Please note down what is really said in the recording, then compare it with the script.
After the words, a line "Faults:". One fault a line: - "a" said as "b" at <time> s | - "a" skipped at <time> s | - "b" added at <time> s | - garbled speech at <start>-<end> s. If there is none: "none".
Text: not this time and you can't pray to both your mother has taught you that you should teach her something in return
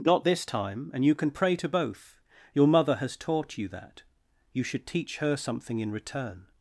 not this time and you can pray to both your mother has taught you that you should teach her something in return
Faults:
- "can't" said as "can" at 1.1 s